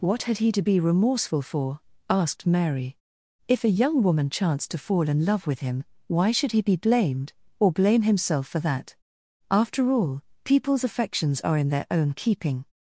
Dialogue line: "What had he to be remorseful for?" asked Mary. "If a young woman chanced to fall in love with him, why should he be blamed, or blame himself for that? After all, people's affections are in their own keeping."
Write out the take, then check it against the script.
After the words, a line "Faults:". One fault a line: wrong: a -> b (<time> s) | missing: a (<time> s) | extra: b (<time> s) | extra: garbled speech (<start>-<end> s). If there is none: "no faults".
"What had he to be remorseful for?" asked Mary. "If a young woman chanced to fall in love with him, why should he be blamed, or blame himself for that? After all, people's affections are in their own keeping."
Faults:
no faults